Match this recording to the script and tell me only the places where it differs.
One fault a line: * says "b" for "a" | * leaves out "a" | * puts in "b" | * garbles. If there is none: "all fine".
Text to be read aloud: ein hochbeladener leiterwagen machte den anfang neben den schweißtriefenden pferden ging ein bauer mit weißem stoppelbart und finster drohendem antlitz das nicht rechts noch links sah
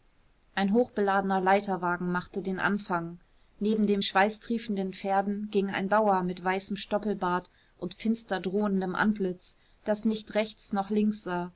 all fine